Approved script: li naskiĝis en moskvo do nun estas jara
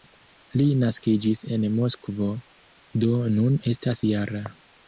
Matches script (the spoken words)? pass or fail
pass